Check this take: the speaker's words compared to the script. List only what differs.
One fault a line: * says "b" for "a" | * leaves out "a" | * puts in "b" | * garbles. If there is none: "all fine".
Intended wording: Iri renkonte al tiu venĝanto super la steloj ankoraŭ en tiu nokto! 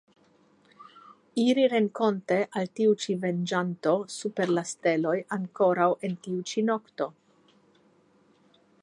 * puts in "ĉi"
* puts in "ĉi"